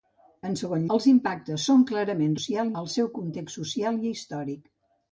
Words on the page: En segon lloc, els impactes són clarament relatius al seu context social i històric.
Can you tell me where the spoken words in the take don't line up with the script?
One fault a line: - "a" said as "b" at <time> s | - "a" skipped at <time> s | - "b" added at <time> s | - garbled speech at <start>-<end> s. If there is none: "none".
- "lloc" skipped at 0.9 s
- "relatius" said as "social" at 2.4 s